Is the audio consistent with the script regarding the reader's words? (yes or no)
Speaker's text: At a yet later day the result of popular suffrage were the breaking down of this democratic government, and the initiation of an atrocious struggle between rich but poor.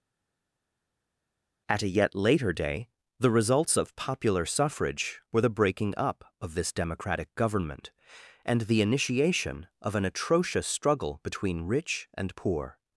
no